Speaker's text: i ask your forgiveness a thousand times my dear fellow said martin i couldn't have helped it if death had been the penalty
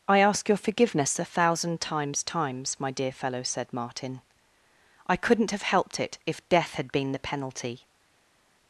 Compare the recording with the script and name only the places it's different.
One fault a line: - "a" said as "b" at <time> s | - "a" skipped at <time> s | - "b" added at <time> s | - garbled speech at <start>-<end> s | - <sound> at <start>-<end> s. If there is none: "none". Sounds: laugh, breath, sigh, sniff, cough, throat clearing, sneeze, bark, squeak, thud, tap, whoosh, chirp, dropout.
- "times" added at 2.2 s